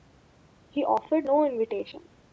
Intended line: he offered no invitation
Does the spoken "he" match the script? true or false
true